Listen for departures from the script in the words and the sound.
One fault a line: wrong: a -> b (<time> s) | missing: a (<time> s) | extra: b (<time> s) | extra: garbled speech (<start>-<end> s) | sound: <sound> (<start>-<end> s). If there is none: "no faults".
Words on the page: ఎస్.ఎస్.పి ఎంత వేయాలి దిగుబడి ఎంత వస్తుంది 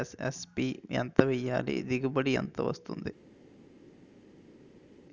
no faults